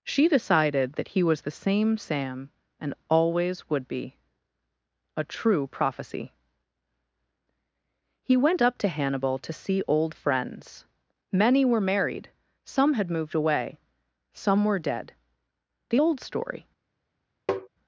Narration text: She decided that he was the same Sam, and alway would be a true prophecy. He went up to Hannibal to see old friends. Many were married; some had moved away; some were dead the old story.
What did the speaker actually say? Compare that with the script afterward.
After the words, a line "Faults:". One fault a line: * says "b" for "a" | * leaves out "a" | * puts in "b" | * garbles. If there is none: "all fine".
She decided that he was the same Sam, and always would be a true prophecy. He went up to Hannibal to see old friends. Many were married; some had moved away; some were dead the old story.
Faults:
* says "always" for "alway"